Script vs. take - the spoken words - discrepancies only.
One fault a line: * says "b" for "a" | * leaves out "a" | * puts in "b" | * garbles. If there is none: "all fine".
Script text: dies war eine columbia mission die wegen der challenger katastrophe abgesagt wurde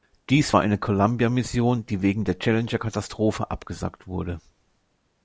all fine